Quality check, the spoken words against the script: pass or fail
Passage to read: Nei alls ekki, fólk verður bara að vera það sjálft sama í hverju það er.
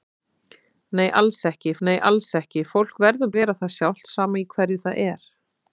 fail